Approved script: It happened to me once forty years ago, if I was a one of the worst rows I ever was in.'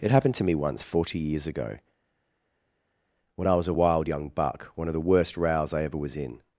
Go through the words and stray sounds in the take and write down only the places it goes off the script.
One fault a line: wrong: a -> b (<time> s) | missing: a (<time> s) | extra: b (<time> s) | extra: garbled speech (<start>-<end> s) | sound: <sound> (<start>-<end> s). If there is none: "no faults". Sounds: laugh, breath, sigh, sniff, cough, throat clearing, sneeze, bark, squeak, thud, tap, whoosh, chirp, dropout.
wrong: if -> when (3.4 s)
extra: wild young buck (3.7 s)